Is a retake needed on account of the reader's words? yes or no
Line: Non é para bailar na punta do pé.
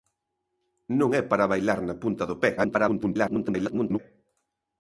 yes